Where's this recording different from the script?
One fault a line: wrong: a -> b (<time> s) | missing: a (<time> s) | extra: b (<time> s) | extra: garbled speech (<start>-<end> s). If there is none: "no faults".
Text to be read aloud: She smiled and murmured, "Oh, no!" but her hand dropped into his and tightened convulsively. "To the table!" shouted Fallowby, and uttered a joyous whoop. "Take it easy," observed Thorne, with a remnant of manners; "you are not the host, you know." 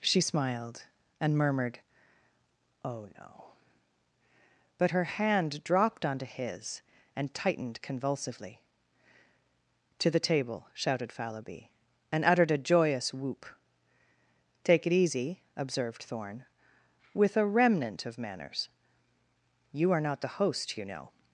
wrong: into -> onto (6.0 s)